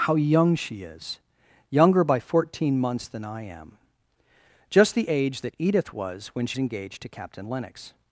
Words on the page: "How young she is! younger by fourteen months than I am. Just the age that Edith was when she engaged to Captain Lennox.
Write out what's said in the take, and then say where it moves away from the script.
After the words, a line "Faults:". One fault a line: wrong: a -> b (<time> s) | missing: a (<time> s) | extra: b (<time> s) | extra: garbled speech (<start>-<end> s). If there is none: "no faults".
"How young she is! younger by fourteen months than I am. Just the age that Edith was when she engaged to Captain Lennox.
Faults:
no faults